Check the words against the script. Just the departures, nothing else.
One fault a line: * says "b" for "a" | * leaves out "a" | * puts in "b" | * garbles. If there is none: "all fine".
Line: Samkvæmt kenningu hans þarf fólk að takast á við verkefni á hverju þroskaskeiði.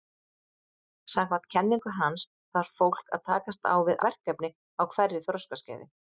all fine